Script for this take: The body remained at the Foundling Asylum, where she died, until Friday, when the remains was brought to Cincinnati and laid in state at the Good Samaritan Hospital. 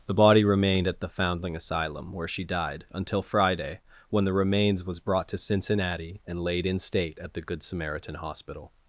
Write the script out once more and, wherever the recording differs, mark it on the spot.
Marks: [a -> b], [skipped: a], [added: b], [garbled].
The body remained at the Foundling Asylum, where she died, until Friday, when the remains was brought to Cincinnati and laid in state at the Good Samaritan Hospital.